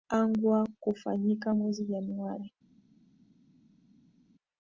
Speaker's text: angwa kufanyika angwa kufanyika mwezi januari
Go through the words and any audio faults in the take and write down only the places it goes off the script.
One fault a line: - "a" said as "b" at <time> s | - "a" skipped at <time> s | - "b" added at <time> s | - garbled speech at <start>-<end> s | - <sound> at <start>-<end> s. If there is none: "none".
- "angwa kufanyika" skipped at 1.6 s